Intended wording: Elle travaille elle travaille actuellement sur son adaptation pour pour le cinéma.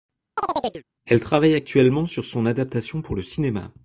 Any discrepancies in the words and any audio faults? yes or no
yes